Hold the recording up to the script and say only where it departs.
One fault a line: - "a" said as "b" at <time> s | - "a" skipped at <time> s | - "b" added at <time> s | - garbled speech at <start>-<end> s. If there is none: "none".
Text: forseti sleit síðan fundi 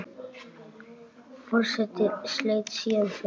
none